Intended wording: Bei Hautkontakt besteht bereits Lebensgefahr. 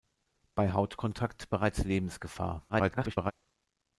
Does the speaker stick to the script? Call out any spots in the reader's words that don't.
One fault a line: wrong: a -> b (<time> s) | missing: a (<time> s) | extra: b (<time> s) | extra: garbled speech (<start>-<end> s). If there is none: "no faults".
missing: besteht (1.5 s)
extra: garbled speech (2.7-3.3 s)